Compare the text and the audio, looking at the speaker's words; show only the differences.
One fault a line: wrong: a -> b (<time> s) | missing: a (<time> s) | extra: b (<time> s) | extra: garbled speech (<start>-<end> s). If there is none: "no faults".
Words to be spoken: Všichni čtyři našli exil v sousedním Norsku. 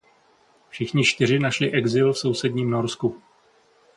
no faults